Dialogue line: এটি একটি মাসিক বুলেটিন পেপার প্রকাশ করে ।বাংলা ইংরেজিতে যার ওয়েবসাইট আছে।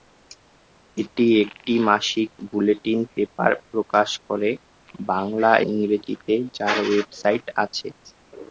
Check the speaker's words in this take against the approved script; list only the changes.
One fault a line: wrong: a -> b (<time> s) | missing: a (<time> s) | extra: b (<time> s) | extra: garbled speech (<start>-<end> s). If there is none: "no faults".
no faults